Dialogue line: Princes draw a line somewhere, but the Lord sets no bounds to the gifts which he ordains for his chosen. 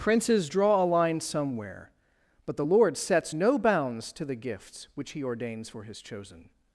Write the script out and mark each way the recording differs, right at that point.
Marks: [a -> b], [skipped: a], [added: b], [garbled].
Princes draw a line somewhere, but the Lord sets no bounds to the gifts which he ordains for his chosen.